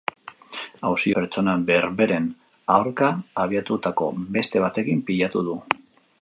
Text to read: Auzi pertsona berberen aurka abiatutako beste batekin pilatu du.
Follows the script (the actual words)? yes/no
yes